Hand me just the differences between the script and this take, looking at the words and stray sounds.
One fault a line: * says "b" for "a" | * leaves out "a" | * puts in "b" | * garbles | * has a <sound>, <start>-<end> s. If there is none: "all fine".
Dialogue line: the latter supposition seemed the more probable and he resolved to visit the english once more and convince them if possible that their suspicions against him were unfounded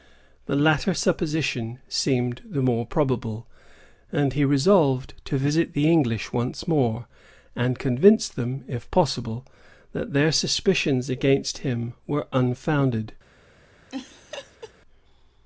* has a laugh, 13.9-14.7 s